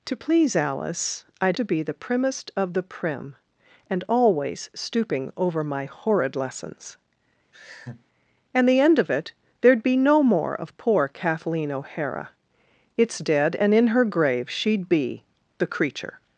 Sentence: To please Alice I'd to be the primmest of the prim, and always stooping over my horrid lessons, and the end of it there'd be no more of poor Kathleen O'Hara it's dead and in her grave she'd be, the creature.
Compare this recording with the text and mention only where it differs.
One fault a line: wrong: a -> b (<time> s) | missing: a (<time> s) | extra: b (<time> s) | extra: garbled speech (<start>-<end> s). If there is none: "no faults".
no faults